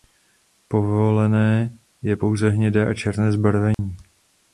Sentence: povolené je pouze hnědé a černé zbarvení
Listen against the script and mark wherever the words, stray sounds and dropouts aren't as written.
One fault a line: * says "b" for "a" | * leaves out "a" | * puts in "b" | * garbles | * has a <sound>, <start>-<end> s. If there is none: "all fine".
* has a dropout, 3.7-3.8 s